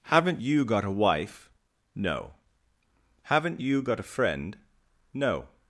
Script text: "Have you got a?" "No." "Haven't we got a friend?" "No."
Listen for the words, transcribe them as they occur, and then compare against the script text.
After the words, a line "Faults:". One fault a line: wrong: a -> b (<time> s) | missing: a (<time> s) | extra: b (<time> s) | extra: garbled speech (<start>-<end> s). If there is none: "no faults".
"Haven't you got a wife?" "No." "Haven't you got a friend?" "No."
Faults:
wrong: Have -> Haven't (0.0 s)
extra: wife (0.9 s)
wrong: we -> you (3.6 s)